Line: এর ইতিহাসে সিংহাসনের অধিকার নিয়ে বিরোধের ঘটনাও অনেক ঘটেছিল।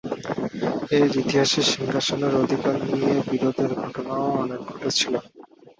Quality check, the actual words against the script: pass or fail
pass